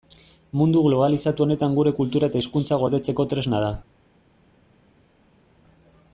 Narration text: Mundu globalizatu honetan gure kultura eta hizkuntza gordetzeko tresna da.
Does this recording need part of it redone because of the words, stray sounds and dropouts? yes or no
no